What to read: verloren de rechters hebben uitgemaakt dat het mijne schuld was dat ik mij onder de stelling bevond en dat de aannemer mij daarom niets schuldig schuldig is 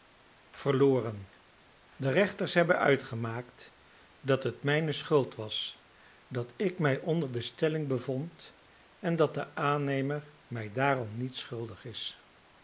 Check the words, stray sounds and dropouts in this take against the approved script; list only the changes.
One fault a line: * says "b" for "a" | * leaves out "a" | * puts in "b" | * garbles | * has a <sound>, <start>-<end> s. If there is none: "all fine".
* leaves out "schuldig"